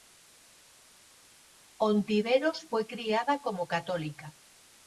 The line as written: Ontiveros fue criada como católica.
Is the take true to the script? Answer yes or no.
yes